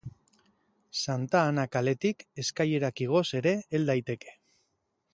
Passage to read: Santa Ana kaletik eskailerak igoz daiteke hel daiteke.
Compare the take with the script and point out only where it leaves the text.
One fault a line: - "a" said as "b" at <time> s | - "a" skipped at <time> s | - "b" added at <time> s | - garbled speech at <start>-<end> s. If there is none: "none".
- "daiteke" said as "ere" at 3.4 s